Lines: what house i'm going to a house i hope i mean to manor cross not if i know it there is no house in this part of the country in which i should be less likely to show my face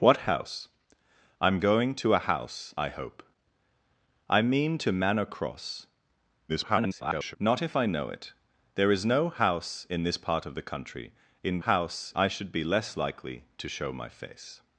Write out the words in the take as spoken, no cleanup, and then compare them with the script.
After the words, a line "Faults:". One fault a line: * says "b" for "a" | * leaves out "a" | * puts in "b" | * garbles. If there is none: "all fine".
what house i'm going to a house i hope i mean to manor cross [garbled] not if i know it there is no house in this part of the country in house i should be less likely to show my face
Faults:
* garbles
* says "house" for "which"